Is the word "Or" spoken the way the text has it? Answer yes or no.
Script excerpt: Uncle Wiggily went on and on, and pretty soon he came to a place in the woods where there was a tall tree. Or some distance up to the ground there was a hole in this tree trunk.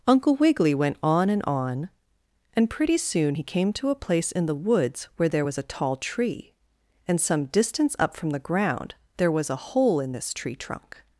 no